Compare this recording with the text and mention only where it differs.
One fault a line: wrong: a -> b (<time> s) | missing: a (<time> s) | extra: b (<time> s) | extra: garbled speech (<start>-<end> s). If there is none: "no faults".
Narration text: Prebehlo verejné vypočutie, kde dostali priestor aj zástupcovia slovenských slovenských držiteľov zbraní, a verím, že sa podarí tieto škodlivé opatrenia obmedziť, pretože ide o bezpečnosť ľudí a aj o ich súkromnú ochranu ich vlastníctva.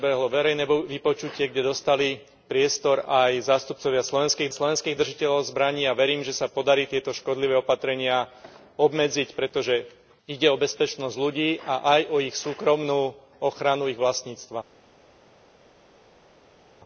no faults